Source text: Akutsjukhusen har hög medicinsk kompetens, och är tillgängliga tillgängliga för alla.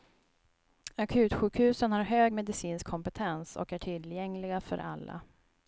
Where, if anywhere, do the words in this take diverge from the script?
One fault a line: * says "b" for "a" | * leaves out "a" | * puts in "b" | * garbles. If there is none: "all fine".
* leaves out "tillgängliga"